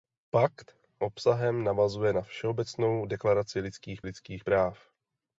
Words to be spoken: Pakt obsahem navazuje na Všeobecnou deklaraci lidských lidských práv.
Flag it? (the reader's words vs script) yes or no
no